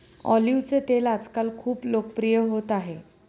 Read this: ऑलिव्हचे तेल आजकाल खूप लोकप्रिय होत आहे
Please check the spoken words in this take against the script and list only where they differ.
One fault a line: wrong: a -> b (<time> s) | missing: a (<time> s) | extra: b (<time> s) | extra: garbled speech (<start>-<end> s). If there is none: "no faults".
no faults